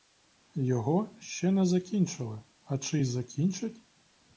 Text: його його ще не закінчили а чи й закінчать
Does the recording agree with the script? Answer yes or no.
no